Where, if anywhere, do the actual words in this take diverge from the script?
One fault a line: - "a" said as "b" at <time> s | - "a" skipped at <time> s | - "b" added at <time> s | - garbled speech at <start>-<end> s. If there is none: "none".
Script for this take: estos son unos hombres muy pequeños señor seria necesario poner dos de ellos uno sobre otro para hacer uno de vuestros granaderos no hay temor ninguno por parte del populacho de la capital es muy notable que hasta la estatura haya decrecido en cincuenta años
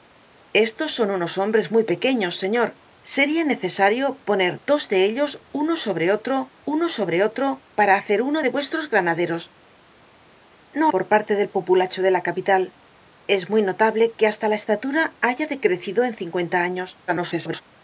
- "uno sobre otro" added at 6.6 s
- "hay temor ninguno" skipped at 10.9 s
- garbled speech at 17.1-17.6 s